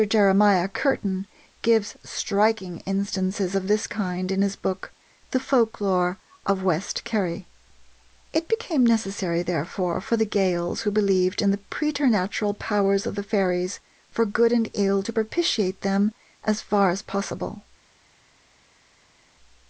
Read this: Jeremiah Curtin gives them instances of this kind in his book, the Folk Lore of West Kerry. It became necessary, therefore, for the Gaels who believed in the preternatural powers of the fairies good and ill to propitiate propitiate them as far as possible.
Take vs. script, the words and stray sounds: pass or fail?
fail